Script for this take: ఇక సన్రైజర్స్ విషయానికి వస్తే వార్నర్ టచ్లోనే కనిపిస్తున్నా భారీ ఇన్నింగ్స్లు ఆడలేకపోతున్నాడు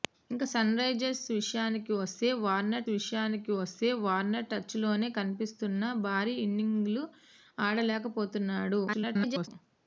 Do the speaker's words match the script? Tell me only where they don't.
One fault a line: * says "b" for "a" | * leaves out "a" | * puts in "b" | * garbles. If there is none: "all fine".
* puts in "విషయానికి వస్తే వార్నర్"
* garbles